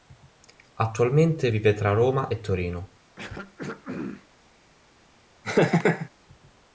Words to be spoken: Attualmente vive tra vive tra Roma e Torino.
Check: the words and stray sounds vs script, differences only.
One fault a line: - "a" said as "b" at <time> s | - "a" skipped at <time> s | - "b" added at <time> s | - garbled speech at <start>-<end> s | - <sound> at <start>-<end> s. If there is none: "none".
- "vive tra" skipped at 1.9 s
- throat clearing at 3.2-4.3 s
- laugh at 5.4-6.1 s